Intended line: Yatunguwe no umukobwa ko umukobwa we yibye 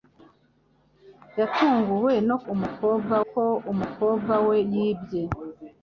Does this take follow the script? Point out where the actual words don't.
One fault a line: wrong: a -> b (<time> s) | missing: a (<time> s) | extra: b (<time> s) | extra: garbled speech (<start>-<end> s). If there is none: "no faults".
no faults